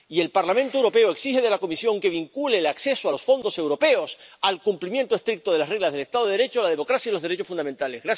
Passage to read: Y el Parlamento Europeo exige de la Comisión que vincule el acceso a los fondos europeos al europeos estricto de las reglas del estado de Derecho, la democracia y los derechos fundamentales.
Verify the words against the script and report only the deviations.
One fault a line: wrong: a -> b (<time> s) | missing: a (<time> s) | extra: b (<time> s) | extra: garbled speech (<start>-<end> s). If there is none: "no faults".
wrong: europeos -> cumplimiento (4.6 s)